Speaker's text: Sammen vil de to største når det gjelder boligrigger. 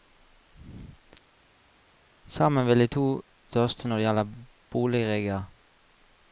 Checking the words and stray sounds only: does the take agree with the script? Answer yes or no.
yes